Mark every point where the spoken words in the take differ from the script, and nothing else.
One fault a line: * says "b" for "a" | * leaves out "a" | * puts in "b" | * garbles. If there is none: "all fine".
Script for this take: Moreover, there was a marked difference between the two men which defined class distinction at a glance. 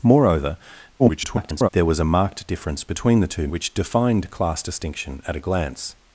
* garbles
* leaves out "men"